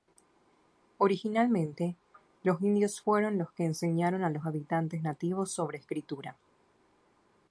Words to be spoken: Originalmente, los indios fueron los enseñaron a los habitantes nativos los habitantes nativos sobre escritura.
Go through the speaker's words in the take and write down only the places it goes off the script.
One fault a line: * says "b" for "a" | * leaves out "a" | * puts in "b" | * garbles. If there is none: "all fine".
* puts in "que"
* leaves out "los habitantes nativos"